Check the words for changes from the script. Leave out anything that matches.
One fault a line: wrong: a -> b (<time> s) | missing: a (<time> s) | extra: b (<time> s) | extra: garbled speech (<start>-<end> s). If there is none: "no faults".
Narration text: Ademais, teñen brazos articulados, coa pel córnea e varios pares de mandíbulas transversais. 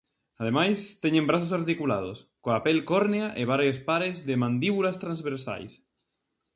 no faults